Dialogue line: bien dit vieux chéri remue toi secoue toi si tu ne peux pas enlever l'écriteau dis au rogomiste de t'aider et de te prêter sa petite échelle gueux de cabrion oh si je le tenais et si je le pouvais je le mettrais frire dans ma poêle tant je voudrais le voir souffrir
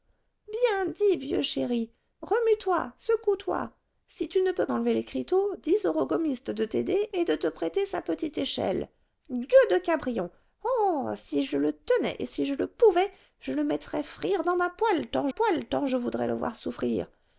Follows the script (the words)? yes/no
no